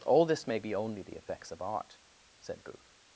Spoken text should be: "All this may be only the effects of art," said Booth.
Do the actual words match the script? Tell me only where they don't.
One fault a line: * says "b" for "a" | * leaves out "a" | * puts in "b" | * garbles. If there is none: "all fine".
all fine